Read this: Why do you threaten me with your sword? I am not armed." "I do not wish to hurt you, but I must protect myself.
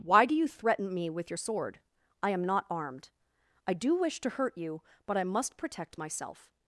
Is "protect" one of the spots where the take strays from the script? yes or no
no